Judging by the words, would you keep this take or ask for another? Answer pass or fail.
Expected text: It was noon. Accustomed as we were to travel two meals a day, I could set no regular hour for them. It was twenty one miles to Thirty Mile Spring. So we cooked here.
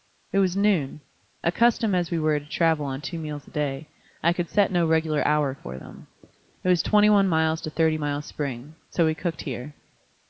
fail